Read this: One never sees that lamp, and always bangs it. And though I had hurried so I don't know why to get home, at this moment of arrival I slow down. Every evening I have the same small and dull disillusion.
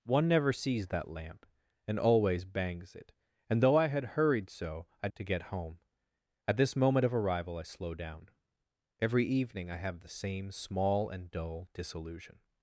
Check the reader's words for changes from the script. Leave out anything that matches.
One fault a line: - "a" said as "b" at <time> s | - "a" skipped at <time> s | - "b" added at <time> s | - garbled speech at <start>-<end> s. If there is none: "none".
- "don't know why" skipped at 5.1 s